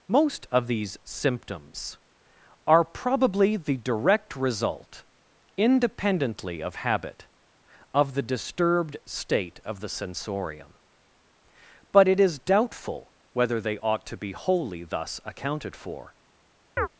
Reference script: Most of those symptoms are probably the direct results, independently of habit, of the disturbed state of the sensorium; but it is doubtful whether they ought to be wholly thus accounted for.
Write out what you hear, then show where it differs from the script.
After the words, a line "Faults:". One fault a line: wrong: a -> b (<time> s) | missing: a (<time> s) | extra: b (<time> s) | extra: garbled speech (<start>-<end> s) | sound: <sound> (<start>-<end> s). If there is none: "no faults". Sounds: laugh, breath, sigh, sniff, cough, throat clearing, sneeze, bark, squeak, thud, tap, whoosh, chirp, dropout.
Most of these symptoms are probably the direct result, independently of habit, of the disturbed state of the sensorium; but it is doubtful whether they ought to be wholly thus accounted for.
Faults:
wrong: those -> these (0.7 s)
wrong: results -> result (4.3 s)
sound: chirp (16.8-16.9 s)